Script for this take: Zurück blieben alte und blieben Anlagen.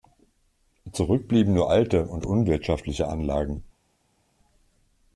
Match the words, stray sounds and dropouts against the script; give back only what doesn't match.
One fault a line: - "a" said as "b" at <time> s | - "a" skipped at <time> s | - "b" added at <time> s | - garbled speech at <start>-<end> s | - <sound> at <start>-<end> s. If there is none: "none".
- "nur" added at 1.5 s
- "blieben" said as "unwirtschaftliche" at 2.2 s